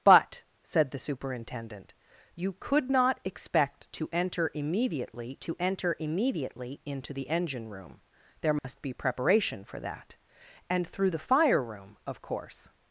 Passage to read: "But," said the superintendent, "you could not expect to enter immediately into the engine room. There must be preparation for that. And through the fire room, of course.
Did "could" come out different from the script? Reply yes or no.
no